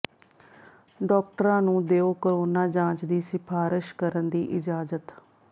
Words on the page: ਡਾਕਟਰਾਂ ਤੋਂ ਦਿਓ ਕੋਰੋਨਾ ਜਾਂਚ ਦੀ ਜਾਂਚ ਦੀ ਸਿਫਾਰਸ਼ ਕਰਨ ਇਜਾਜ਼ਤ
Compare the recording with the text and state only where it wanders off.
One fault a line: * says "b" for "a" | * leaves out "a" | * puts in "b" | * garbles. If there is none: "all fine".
* says "ਨੂੰ" for "ਤੋਂ"
* leaves out "ਜਾਂਚ ਦੀ"
* puts in "ਦੀ"